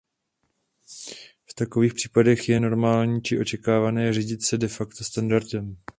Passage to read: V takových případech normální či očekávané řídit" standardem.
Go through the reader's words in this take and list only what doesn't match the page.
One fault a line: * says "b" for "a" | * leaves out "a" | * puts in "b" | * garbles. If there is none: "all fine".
* puts in "je"
* puts in "se de facto"